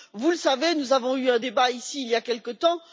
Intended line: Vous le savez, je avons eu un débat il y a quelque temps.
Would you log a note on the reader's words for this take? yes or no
yes